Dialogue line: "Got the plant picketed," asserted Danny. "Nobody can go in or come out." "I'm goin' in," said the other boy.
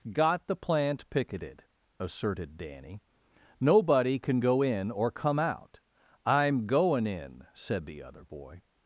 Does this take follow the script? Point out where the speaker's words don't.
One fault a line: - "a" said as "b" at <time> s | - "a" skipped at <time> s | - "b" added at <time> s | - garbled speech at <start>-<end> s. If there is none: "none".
none